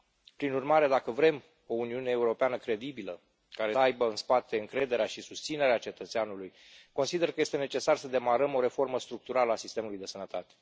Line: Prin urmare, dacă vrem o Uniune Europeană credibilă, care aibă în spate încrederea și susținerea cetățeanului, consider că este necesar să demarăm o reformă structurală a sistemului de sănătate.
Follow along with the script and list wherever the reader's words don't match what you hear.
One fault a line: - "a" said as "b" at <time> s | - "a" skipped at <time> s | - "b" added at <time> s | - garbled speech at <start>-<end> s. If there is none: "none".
none